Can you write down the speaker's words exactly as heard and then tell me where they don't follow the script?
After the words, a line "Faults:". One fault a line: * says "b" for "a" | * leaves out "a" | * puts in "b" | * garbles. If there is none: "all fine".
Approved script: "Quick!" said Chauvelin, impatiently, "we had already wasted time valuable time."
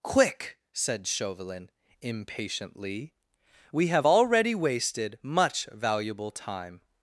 "Quick!" said Chauvelin, impatiently, "we have already wasted much valuable time."
Faults:
* says "have" for "had"
* says "much" for "time"